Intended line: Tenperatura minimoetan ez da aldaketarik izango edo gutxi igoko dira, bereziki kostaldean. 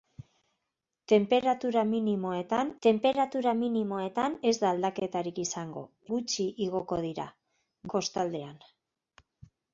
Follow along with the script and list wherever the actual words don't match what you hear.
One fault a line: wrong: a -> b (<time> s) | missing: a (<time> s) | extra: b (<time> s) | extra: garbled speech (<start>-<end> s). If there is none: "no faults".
extra: tenperatura minimoetan (2.8 s)
missing: edo (5.9 s)
missing: bereziki (7.3 s)